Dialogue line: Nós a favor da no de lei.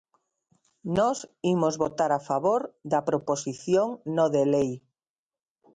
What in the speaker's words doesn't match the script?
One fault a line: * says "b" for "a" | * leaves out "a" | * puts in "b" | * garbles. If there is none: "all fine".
* puts in "imos votar"
* puts in "proposición"